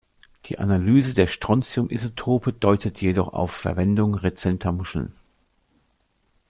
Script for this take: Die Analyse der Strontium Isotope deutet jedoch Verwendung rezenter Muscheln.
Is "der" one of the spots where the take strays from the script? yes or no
no